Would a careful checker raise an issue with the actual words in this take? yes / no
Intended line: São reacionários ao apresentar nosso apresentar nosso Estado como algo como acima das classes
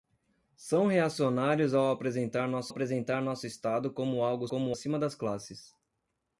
no